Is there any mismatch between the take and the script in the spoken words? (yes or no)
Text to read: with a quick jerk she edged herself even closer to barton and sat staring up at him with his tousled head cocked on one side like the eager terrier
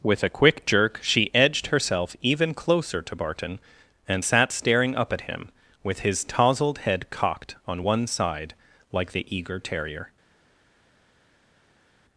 no